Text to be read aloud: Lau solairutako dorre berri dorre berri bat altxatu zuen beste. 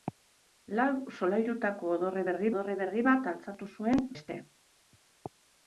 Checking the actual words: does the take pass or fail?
pass